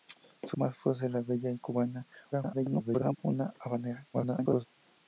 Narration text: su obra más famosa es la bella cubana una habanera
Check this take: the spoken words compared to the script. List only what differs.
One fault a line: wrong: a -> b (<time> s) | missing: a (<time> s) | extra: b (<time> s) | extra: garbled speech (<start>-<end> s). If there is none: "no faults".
missing: obra (0.6 s)
extra: garbled speech (2.3-3.2 s)
extra: garbled speech (4.1-4.7 s)